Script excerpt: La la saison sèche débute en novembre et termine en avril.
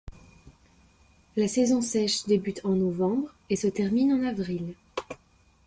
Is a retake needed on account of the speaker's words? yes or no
yes